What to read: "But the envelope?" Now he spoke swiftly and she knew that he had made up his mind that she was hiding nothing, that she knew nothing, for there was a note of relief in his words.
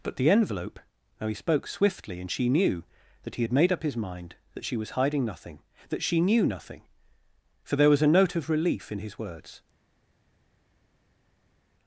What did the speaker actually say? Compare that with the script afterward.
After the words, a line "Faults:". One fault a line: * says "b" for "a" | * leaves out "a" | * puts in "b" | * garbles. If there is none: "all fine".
"But the envelope?" Now he spoke swiftly and she knew that he had made up his mind that she was hiding nothing, that she knew nothing, for there was a note of relief in his words.
Faults:
all fine